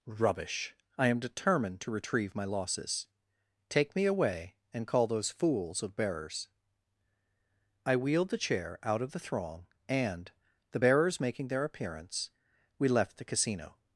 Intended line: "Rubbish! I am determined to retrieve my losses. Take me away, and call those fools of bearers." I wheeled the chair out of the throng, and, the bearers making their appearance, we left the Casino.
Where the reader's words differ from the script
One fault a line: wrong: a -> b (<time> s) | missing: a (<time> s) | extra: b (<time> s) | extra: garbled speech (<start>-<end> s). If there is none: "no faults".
no faults